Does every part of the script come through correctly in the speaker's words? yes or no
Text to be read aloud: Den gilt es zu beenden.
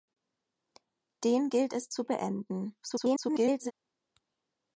no